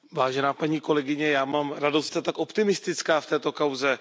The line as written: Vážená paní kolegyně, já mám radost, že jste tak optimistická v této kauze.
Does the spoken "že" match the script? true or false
false